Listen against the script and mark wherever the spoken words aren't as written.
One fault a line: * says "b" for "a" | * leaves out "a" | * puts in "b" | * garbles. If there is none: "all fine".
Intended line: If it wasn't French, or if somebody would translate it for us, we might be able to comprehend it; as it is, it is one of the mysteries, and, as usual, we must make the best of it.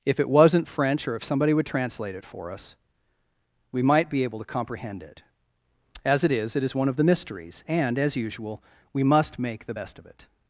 all fine